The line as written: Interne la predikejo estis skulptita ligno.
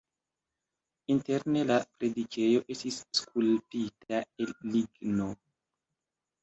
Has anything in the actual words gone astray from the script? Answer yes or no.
yes